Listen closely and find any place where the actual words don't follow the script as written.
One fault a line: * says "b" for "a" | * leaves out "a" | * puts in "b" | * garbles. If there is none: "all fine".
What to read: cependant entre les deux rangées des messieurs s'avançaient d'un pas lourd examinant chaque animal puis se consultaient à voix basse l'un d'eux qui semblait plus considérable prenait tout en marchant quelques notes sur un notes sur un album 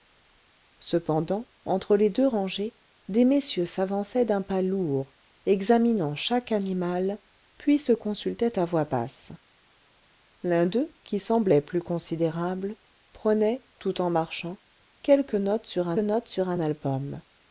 all fine